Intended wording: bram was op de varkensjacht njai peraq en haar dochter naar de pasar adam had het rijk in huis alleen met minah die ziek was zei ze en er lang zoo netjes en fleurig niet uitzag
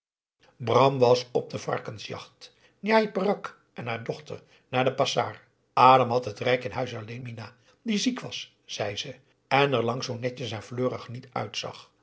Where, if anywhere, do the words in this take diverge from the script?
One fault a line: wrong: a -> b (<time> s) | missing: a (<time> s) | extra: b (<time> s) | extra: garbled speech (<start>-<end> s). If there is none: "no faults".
missing: met (7.2 s)